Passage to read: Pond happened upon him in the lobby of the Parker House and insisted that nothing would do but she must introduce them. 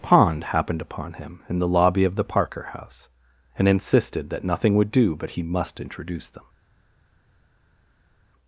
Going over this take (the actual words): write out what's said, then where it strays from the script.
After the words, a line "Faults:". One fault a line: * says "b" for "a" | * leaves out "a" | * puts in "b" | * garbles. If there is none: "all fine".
Pond happened upon him in the lobby of the Parker House and insisted that nothing would do but he must introduce them.
Faults:
* says "he" for "she"